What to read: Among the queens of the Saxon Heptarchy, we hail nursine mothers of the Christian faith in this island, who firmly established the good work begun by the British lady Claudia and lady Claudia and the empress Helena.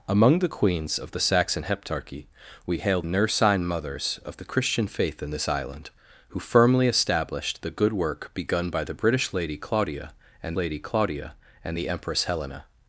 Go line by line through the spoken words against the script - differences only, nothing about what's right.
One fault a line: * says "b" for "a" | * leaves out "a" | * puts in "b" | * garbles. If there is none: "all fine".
all fine